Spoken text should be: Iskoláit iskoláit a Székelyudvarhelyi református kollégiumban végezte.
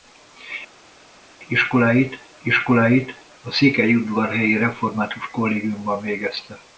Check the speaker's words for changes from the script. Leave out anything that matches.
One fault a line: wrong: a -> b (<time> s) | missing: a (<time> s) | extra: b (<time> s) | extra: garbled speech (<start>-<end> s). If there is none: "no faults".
no faults